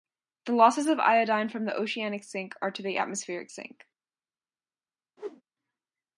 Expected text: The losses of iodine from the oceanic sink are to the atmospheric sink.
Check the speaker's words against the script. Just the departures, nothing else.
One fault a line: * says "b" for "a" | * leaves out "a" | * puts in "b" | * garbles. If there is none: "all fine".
all fine